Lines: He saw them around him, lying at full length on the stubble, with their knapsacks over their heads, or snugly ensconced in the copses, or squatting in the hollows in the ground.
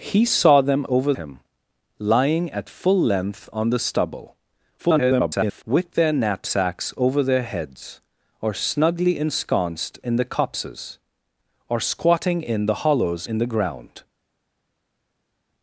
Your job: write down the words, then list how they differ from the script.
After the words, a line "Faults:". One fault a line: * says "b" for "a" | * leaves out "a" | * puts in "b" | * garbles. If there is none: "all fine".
He saw them over him, lying at full length on the stubble, [garbled] with their knapsacks over their heads, or snugly ensconced in the copses, or squatting in the hollows in the ground.
Faults:
* says "over" for "around"
* garbles